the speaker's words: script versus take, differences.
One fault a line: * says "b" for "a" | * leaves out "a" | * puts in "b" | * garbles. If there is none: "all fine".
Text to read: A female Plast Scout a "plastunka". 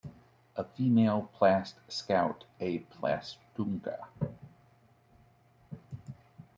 all fine